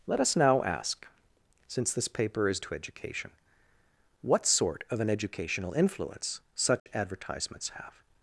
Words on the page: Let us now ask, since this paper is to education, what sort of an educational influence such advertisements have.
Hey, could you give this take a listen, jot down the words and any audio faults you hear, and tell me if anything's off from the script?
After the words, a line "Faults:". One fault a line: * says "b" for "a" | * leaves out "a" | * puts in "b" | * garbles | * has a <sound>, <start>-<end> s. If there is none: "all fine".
Let us now ask, since this paper is to education, what sort of an educational influence such advertisements have.
Faults:
* has a dropout, 6.8-6.9 s